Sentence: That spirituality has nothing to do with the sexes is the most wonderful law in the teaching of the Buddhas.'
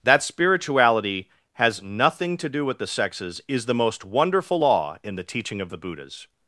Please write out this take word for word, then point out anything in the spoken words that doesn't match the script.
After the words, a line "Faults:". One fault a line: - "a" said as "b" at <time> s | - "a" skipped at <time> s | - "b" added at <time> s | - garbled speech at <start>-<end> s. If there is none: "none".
That spirituality has nothing to do with the sexes is the most wonderful law in the teaching of the Buddhas.'
Faults:
none